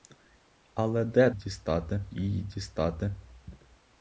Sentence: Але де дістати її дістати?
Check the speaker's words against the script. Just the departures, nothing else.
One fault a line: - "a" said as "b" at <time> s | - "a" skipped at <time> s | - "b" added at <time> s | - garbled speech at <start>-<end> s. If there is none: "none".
none